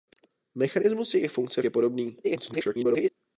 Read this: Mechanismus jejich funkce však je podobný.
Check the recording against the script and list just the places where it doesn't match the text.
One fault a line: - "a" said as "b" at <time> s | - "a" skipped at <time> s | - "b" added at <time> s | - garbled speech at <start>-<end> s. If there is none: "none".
- "však" skipped at 1.6 s
- garbled speech at 2.2-3.1 s